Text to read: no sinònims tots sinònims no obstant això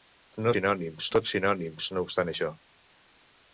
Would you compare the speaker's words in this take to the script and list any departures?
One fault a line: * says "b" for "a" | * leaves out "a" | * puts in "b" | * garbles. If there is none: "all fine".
all fine